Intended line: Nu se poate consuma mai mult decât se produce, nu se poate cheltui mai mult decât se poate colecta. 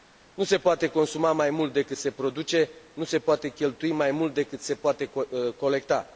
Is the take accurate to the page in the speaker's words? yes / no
yes